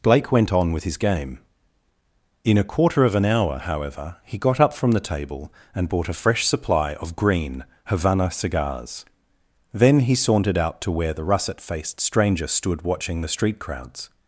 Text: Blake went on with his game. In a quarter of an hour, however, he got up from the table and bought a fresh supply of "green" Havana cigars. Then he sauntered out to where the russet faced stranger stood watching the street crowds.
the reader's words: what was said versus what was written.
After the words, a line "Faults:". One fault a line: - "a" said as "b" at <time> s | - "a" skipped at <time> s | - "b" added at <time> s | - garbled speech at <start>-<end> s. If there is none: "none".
Blake went on with his game. In a quarter of an hour, however, he got up from the table and bought a fresh supply of "green" Havana cigars. Then he sauntered out to where the russet faced stranger stood watching the street crowds.
Faults:
none